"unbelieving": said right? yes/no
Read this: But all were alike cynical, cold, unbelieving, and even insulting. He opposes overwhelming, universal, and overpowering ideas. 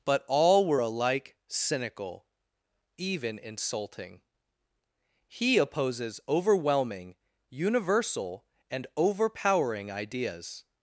no